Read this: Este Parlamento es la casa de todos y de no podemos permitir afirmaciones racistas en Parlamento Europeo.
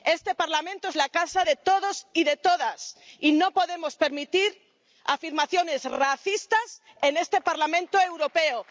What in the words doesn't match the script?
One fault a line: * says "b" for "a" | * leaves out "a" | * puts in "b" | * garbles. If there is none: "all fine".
* puts in "todas y"
* puts in "este"